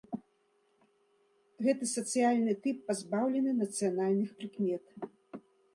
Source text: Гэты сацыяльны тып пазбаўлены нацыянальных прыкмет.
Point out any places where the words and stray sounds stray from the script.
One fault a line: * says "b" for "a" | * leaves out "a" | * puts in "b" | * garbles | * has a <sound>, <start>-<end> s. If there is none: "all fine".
all fine